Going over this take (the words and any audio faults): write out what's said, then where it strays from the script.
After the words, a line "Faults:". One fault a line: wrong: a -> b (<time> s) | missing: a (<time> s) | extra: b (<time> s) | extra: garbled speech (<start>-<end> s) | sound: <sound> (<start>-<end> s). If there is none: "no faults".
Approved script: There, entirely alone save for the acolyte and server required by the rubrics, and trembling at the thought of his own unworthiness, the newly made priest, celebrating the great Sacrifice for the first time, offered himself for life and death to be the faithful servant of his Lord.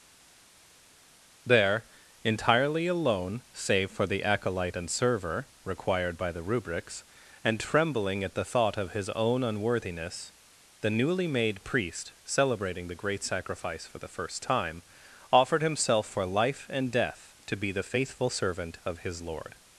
There, entirely alone save for the acolyte and server required by the rubrics, and trembling at the thought of his own unworthiness, the newly made priest, celebrating the great Sacrifice for the first time, offered himself for life and death to be the faithful servant of his Lord.
Faults:
no faults